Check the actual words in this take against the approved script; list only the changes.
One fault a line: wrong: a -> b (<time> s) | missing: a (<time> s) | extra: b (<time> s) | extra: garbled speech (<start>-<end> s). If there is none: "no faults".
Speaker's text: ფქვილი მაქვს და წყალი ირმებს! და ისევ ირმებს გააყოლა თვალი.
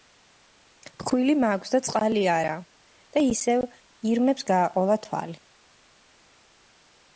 wrong: ირმებს -> არა (2.4 s)